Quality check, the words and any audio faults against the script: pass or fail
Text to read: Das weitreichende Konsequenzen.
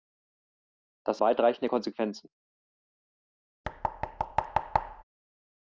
fail